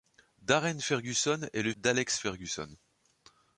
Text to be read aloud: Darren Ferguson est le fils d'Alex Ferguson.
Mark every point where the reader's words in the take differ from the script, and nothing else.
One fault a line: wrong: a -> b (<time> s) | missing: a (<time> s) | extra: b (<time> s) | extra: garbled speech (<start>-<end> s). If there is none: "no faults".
missing: fils (1.7 s)